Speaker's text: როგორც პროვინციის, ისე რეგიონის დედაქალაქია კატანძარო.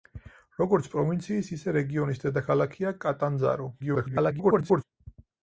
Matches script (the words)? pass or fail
fail